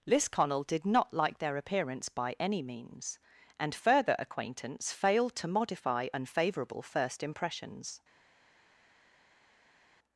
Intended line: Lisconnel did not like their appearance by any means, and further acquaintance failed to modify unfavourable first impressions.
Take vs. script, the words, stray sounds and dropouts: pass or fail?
pass